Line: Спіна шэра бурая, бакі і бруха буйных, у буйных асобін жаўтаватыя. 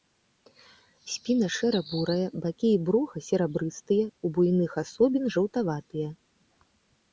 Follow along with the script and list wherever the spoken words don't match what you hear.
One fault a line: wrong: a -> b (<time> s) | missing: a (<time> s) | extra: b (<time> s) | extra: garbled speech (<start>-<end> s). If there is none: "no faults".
wrong: буйных -> серабрыстыя (3.3 s)